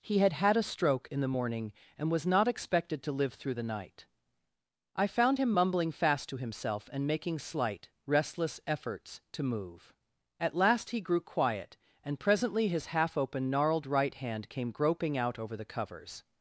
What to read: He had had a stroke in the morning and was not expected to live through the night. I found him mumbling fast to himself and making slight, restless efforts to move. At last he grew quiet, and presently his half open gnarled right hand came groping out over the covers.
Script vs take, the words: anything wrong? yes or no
no